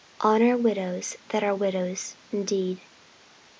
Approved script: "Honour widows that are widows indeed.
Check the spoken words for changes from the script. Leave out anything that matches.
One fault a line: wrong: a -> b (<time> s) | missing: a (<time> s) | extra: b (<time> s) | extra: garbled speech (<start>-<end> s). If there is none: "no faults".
no faults